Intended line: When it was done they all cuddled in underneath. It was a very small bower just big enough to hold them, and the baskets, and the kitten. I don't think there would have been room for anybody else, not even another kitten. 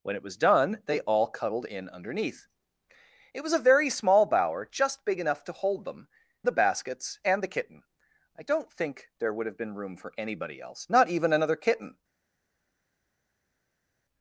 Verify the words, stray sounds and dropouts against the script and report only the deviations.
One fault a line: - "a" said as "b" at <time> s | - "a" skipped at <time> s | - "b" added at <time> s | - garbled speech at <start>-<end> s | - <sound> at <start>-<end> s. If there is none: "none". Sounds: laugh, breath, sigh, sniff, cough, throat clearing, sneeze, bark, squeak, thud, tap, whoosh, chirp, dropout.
- "and" skipped at 6.1 s